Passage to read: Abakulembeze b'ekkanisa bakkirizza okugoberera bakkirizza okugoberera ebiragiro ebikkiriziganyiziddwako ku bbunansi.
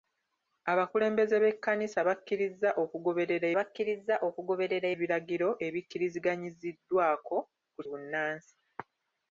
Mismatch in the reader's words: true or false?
false